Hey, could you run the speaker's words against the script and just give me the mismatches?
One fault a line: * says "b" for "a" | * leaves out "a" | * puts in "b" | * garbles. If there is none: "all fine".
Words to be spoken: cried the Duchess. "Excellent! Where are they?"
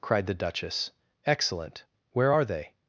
all fine